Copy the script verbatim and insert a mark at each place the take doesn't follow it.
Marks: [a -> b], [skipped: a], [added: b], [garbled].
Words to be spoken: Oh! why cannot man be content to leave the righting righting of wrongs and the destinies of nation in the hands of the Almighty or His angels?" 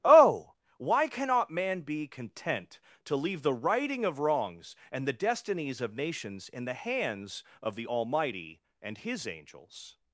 Oh! why cannot man be content to leave the righting [skipped: righting] of wrongs and the destinies of [nation -> nations] in the hands of the Almighty [or -> and] His angels?"